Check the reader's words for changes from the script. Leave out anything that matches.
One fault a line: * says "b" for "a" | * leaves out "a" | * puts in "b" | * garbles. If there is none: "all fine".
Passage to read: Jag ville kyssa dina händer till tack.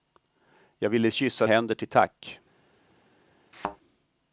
* leaves out "dina"